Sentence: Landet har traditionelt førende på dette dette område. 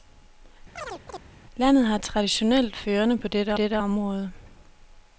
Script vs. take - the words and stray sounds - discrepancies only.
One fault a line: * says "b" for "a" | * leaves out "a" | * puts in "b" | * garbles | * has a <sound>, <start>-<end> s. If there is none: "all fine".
* has a chirp, 0.8-1.2 s